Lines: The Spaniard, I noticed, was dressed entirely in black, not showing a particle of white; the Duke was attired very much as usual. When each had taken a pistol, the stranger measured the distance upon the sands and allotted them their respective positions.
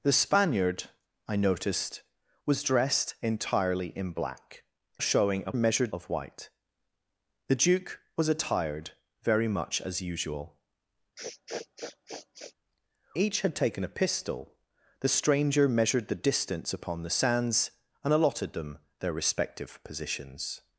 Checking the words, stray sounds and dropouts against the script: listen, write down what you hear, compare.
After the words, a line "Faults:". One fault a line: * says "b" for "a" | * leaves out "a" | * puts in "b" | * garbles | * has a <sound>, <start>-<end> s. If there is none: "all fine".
The Spaniard, I noticed, was dressed entirely in black, showing a measured of white; the Duke was attired very much as usual. Each had taken a pistol, the stranger measured the distance upon the sands and allotted them their respective positions.
Faults:
* leaves out "not"
* says "measured" for "particle"
* leaves out "When"
* has a sniff, 11.2-12.5 s